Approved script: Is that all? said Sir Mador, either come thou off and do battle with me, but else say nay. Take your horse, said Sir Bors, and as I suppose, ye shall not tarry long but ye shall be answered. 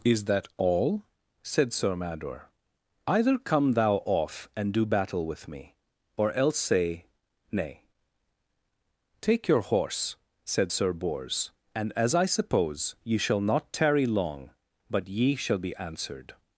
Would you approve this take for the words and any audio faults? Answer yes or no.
no